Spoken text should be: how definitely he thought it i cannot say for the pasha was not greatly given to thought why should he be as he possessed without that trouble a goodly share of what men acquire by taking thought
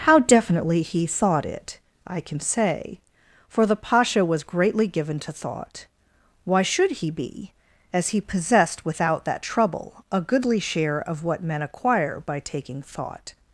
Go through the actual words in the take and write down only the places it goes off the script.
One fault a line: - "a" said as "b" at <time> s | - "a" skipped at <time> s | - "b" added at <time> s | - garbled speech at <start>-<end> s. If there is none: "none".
- "cannot" said as "can" at 2.2 s
- "not" skipped at 4.4 s